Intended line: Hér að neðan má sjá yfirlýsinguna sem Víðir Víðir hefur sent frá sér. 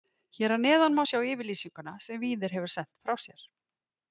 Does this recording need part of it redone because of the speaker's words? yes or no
yes